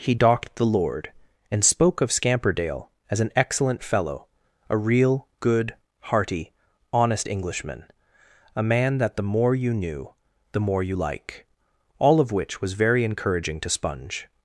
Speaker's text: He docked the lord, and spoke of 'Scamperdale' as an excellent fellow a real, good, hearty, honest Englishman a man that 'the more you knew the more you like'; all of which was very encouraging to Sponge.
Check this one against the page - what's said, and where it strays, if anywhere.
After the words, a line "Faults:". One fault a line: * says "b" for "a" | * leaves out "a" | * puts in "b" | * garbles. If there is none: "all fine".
He docked the lord, and spoke of 'Scamperdale' as an excellent fellow a real, good, hearty, honest Englishman a man that 'the more you knew the more you like'; all of which was very encouraging to Sponge.
Faults:
all fine